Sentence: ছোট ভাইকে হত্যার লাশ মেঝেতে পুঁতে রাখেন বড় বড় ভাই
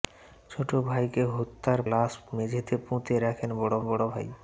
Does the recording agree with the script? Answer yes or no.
yes